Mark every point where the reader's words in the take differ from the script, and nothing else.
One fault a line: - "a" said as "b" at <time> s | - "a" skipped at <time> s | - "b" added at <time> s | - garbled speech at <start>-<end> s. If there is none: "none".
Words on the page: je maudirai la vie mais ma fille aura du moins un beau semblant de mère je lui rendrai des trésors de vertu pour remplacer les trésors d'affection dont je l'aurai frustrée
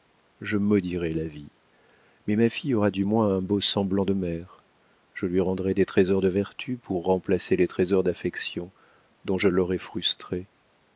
none